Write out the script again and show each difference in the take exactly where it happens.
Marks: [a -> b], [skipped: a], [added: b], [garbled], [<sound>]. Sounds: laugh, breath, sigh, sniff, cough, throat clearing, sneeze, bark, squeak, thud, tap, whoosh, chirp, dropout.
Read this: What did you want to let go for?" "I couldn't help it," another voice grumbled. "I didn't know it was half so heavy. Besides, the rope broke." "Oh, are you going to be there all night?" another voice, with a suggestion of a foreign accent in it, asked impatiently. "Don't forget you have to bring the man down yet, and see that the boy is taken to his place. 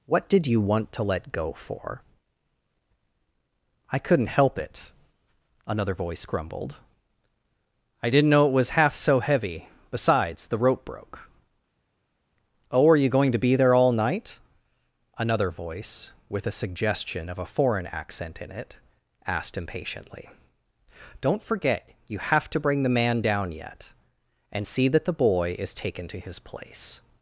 What did you want to let go for?" "I couldn't help it," another voice grumbled. "I didn't know it was half so heavy. Besides, the rope broke." "Oh, are you going to be there all night?" another voice, with a suggestion of a foreign accent in it, asked impatiently. "Don't forget you have to bring the man down yet, and see that the boy is taken to his place.